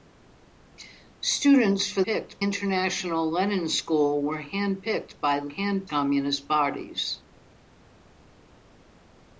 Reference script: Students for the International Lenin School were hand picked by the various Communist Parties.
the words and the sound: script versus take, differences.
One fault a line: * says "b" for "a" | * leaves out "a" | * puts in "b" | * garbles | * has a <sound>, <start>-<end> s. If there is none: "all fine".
* says "picked" for "the"
* says "hand" for "various"